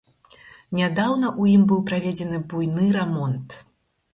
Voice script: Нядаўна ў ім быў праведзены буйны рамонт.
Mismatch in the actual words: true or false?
false